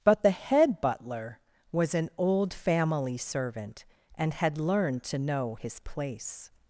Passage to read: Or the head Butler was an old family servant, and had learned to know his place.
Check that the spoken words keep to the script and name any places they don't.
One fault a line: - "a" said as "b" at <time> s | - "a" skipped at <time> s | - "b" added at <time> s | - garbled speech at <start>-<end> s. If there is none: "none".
- "Or" said as "But" at 0.0 s